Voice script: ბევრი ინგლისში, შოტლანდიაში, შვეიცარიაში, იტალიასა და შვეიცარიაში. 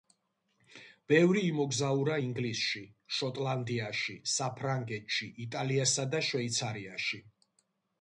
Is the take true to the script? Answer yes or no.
no